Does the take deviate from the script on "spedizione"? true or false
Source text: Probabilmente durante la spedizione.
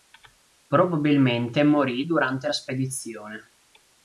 false